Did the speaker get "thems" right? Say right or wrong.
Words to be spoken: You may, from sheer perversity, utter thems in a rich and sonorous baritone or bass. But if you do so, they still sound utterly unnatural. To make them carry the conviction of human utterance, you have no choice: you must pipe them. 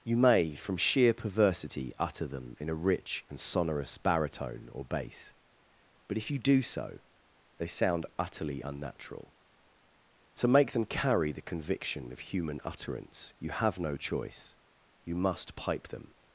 wrong